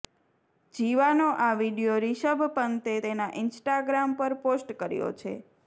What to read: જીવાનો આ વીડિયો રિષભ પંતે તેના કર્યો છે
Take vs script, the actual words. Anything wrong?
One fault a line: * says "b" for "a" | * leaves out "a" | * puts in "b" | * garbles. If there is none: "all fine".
* puts in "ઈન્સ્ટાગ્રામ પર પોસ્ટ"